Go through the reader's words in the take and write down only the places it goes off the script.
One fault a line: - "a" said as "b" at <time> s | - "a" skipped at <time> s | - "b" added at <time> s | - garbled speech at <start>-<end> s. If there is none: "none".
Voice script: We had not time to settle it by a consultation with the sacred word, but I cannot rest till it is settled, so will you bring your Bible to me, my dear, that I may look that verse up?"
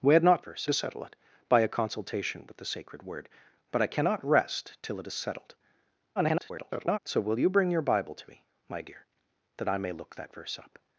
- "time" said as "verse" at 0.4 s
- garbled speech at 6.2-7.0 s